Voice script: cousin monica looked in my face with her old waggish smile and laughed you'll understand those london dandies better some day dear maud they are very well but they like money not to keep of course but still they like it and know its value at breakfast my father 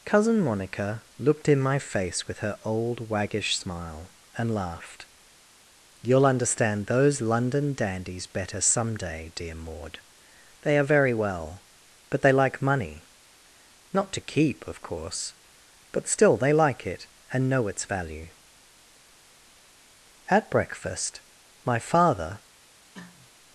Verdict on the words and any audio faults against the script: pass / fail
fail